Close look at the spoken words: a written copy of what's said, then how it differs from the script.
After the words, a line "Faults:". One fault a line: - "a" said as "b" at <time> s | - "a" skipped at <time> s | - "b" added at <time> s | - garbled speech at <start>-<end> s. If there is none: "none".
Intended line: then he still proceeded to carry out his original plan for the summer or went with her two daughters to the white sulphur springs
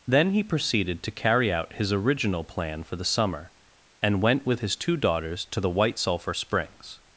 then he proceeded to carry out his original plan for the summer and went with his two daughters to the white sulphur springs
Faults:
- "still" skipped at 0.4 s
- "or" said as "and" at 4.0 s
- "her" said as "his" at 4.6 s